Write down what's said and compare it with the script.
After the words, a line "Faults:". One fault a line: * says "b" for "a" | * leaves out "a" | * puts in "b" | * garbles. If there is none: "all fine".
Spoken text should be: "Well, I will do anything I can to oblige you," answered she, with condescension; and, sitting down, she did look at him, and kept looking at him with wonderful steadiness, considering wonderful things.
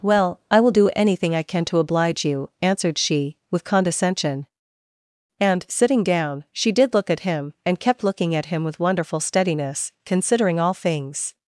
"Well, I will do anything I can to oblige you," answered she, with condescension; and, sitting down, she did look at him, and kept looking at him with wonderful steadiness, considering all things.
Faults:
* says "all" for "wonderful"